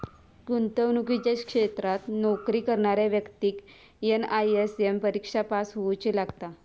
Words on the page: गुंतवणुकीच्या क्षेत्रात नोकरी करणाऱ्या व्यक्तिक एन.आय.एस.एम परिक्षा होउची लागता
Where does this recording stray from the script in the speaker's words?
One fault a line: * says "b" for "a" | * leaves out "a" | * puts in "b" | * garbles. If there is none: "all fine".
* puts in "पास"